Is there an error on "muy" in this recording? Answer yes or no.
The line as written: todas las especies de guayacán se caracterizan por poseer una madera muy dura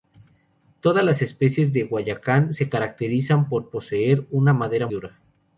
yes